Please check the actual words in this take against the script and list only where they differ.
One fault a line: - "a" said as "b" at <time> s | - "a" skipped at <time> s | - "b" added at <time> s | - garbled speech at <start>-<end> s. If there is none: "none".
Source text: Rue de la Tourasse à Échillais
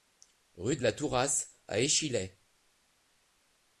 none